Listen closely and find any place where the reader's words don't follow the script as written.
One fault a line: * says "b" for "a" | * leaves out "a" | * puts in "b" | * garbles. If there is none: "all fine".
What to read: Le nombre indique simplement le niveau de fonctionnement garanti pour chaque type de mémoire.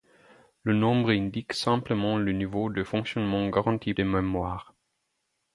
* leaves out "pour chaque type"